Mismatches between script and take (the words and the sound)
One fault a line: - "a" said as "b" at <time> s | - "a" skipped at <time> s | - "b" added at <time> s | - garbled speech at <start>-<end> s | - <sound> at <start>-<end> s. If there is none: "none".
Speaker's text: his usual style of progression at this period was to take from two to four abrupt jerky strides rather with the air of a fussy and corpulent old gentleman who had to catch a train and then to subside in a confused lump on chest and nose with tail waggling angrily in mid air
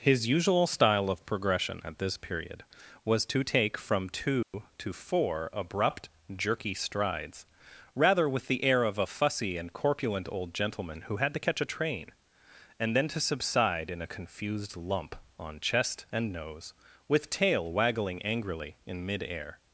- dropout at 4.4-4.5 s